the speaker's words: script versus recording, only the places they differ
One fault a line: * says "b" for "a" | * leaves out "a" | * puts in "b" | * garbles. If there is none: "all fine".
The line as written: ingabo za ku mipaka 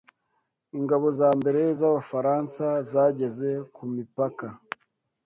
* puts in "mbere z'abafaransa zageze"